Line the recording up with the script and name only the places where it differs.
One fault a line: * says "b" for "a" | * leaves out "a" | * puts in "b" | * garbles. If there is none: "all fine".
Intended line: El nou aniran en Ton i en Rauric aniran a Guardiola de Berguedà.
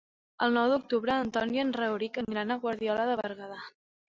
* says "d'octubre" for "aniran"